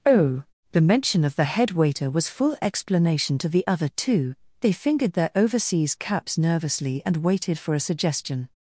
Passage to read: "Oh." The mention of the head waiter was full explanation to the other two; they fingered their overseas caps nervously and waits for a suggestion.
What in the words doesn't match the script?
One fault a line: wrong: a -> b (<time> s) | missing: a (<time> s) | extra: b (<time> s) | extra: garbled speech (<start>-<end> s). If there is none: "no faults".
wrong: waits -> waited (7.2 s)